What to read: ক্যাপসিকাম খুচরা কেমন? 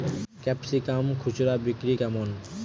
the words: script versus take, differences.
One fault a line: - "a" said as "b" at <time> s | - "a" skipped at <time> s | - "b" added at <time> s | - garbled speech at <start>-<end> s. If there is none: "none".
- "বিক্রি" added at 1.6 s